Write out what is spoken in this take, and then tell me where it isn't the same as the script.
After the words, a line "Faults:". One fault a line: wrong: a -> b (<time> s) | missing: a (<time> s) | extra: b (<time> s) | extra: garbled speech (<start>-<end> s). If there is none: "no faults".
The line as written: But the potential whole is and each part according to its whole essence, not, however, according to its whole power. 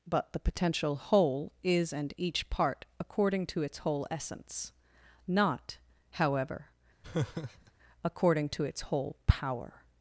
But the potential whole is and each part according to its whole essence, not, however, according to its whole power.
Faults:
no faults